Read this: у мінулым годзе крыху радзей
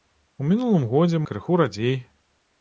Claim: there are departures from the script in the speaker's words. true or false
false